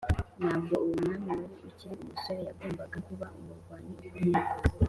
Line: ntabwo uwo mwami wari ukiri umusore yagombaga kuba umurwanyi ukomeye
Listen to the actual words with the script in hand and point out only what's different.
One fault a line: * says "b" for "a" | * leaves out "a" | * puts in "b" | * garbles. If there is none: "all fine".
all fine